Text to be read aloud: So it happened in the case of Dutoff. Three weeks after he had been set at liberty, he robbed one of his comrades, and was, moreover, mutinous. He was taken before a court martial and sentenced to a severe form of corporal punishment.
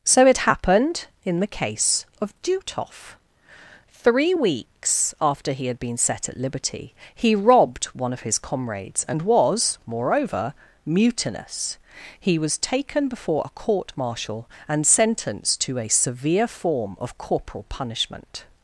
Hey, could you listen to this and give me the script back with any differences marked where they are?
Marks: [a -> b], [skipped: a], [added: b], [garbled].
So it happened in the case of Dutoff. Three weeks after he had been set at liberty, he robbed one of his comrades, and was, moreover, mutinous. He was taken before a court martial and sentenced to a severe form of corporal punishment.